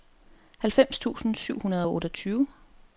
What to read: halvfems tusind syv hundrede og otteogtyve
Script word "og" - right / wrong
right